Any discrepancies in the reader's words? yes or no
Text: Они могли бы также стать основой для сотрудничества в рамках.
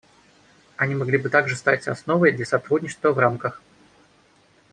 no